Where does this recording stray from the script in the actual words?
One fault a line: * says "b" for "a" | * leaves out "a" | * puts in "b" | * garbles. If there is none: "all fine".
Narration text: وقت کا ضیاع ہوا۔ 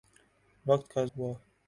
* leaves out "ضیاع"